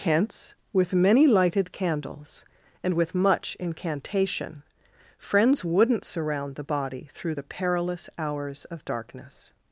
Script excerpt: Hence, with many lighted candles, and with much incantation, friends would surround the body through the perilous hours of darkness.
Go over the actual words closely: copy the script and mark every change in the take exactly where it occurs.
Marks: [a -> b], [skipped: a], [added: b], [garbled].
Hence, with many lighted candles, and with much incantation, friends [would -> wouldn't] surround the body through the perilous hours of darkness.